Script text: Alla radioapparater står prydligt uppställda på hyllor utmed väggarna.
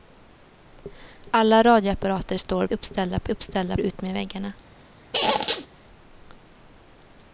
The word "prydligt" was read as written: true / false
false